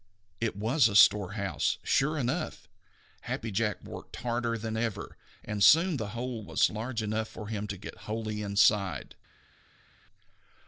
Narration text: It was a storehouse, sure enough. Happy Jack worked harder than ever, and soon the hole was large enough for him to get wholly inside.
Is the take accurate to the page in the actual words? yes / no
yes